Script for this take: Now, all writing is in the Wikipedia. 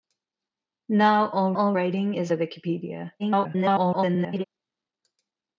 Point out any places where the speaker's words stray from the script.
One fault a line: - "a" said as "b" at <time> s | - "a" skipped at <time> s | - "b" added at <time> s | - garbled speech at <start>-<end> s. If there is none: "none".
- "all" added at 1.5 s
- "in" skipped at 2.3 s
- garbled speech at 3.2-4.4 s